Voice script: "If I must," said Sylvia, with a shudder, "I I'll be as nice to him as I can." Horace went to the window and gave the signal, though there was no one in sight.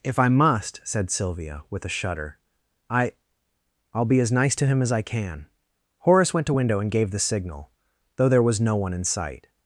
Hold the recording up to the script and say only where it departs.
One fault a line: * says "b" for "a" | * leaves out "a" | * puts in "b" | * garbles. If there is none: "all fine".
* leaves out "the"